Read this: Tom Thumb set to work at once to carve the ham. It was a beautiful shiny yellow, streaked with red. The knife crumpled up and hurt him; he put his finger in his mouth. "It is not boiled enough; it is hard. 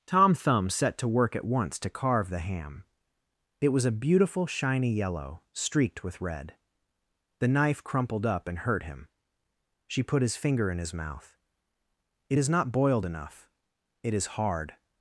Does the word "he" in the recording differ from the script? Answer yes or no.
yes